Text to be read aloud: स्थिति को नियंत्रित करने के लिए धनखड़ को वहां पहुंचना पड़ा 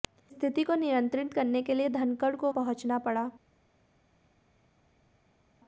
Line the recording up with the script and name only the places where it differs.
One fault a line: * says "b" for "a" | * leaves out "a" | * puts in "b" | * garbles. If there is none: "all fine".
* leaves out "वहां"